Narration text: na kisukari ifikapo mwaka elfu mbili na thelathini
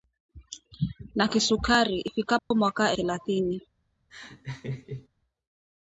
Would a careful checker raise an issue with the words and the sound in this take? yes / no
yes